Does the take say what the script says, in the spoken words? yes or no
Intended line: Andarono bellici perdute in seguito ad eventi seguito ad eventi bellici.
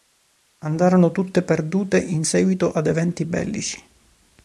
no